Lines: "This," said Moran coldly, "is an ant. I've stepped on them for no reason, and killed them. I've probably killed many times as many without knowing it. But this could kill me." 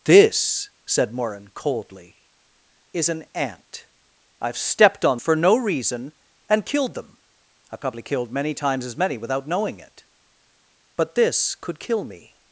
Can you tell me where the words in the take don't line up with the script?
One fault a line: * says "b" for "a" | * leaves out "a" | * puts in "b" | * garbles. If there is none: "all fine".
* leaves out "them"